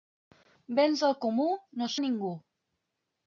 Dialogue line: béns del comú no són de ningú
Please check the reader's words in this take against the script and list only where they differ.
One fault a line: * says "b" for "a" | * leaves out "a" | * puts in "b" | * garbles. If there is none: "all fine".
* leaves out "són"